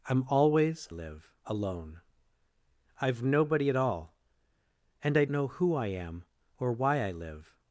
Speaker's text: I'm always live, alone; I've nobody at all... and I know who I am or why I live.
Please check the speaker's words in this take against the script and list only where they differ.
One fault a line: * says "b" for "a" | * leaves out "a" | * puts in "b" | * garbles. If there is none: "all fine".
all fine